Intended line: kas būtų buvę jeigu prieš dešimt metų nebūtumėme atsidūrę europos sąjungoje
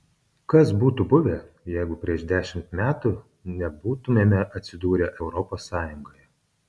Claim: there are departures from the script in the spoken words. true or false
false